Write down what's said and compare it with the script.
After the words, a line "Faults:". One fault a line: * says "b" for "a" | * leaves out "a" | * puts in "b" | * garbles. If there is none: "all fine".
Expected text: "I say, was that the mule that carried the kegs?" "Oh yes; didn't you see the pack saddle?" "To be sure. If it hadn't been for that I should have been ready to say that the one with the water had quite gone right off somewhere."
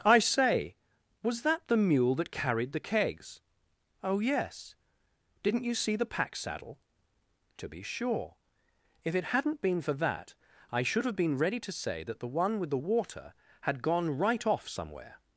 "I say, was that the mule that carried the kegs?" "Oh yes; didn't you see the pack saddle?" "To be sure. If it hadn't been for that I should have been ready to say that the one with the water had gone right off somewhere."
Faults:
* leaves out "quite"